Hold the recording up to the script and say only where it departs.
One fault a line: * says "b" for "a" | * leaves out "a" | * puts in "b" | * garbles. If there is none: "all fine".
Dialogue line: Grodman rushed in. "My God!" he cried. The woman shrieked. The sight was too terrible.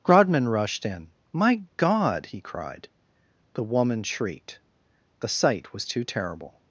all fine